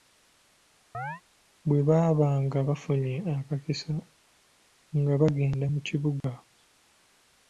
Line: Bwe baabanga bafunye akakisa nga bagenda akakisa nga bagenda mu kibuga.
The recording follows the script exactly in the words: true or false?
false